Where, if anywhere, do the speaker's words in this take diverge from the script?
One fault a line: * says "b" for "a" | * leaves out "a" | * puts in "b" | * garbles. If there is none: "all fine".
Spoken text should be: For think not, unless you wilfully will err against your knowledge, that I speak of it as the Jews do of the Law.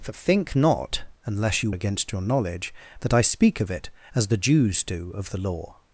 * leaves out "wilfully will err"